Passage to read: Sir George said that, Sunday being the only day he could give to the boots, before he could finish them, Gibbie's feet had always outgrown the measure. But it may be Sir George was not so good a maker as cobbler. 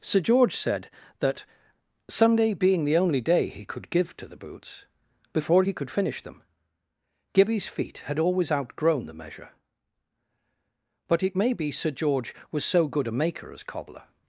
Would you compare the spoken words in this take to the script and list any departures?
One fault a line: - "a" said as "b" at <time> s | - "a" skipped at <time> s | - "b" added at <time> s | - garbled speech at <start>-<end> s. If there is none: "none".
- "not" skipped at 12.6 s